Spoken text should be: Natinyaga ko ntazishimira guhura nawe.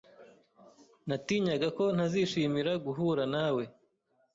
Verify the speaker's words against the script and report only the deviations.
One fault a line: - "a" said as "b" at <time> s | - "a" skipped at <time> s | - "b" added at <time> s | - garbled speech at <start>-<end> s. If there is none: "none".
none